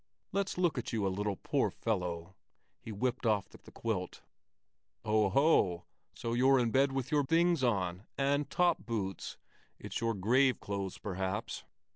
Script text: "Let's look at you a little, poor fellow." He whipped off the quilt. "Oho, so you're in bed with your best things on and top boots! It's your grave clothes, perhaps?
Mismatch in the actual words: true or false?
true